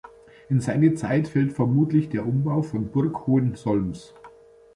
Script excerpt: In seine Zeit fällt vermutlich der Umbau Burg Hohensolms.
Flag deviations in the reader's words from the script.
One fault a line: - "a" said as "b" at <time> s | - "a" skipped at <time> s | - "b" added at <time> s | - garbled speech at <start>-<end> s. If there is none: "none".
- "von" added at 2.6 s